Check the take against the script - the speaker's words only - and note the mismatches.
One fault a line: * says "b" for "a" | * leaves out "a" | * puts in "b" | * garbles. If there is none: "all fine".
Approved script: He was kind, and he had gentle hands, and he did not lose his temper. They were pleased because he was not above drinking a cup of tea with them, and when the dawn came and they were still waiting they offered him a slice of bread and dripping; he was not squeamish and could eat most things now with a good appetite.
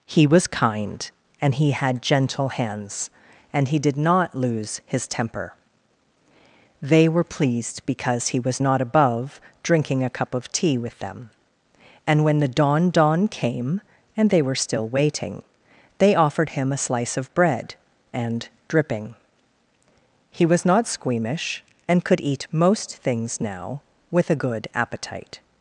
* puts in "dawn"